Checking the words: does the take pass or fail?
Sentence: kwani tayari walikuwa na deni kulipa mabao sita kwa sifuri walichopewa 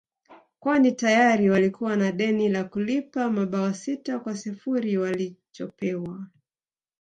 fail